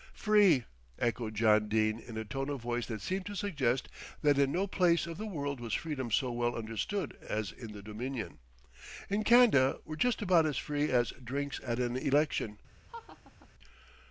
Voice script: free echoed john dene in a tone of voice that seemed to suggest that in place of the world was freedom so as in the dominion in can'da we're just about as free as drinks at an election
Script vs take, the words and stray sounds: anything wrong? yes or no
yes